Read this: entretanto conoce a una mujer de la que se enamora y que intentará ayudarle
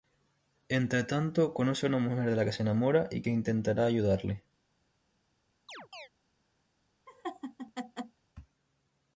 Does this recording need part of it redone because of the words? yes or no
no